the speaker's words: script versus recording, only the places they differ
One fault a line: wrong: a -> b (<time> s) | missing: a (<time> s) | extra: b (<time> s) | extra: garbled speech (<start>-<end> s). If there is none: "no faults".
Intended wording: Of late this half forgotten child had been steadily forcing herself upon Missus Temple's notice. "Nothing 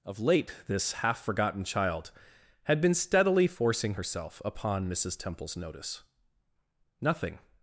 no faults